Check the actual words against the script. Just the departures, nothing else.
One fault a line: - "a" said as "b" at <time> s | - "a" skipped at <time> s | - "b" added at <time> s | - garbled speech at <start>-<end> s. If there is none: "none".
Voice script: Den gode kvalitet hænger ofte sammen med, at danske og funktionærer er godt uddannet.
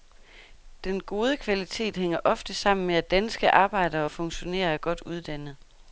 - "arbejdere" added at 3.5 s